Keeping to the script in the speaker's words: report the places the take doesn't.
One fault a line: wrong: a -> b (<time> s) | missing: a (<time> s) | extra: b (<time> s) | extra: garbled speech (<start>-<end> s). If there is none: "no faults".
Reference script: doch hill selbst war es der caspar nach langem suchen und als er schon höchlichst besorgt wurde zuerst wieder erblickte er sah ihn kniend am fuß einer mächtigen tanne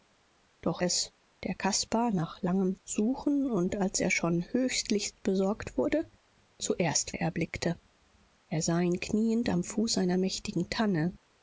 missing: hill selbst war (0.8 s)
missing: wieder (7.1 s)